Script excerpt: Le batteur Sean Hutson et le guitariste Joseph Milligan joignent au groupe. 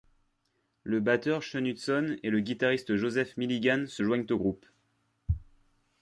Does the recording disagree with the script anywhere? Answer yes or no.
yes